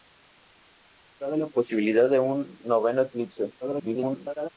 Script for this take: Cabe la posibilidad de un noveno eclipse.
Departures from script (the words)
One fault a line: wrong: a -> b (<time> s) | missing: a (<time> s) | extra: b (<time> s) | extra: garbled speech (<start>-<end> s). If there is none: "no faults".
extra: garbled speech (3.6-4.5 s)